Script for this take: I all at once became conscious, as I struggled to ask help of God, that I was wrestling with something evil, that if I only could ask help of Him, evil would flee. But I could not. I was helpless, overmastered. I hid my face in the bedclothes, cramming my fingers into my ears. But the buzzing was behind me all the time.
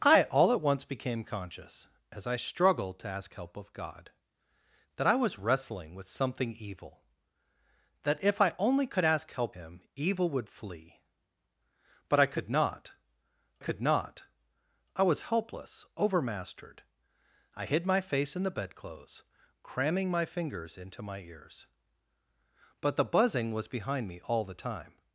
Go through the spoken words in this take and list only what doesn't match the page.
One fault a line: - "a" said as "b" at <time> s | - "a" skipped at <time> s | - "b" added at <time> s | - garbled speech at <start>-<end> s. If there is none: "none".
- "of" skipped at 9.6 s
- "could not" added at 13.6 s